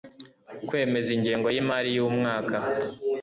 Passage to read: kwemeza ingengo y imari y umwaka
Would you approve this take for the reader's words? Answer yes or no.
yes